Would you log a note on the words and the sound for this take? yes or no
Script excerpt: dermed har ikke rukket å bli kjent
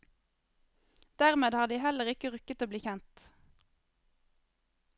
yes